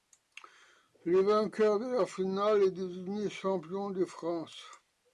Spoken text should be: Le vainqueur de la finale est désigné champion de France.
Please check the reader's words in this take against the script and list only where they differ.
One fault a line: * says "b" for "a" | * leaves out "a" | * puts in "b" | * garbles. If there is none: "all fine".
all fine